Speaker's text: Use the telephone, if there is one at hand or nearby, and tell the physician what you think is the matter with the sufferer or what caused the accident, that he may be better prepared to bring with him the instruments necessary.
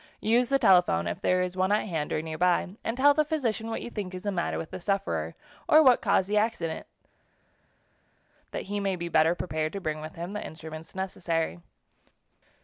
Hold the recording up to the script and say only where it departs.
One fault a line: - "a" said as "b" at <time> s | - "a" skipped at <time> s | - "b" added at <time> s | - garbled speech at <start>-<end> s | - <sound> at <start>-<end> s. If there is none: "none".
none